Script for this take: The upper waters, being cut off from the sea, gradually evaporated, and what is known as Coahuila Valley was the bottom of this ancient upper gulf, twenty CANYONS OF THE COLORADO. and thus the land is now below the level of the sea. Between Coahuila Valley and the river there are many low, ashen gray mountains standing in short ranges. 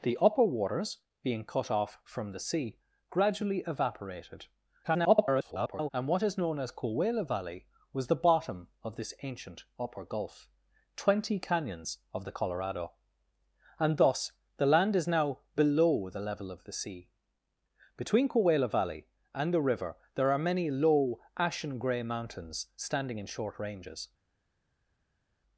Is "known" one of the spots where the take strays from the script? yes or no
no